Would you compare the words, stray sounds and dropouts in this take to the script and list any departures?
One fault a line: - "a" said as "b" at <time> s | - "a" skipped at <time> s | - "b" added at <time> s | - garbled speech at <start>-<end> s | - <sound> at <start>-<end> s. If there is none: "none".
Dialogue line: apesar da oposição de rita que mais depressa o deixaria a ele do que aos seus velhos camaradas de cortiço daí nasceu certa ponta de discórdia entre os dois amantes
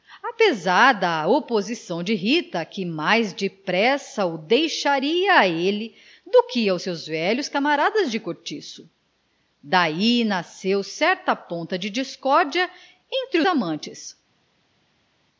- "os dois" skipped at 13.4 s